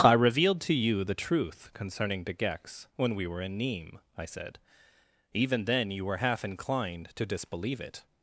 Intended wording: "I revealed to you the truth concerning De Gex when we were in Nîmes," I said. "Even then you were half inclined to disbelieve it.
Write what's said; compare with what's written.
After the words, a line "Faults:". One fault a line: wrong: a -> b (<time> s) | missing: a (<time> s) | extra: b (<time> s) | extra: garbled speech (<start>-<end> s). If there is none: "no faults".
"I revealed to you the truth concerning De Gex when we were in Nîmes," I said. "Even then you were half inclined to disbelieve it.
Faults:
no faults